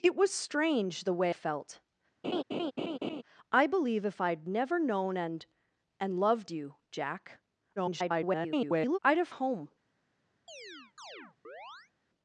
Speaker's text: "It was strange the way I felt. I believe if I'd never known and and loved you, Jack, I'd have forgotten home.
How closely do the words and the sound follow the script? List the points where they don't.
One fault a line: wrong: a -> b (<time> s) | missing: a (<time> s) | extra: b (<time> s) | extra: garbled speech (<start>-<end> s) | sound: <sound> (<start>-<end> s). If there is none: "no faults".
missing: I (1.4 s)
sound: laugh (2.2-3.2 s)
extra: garbled speech (7.8-9.0 s)
missing: forgotten (9.3 s)
sound: chirp (10.5-11.9 s)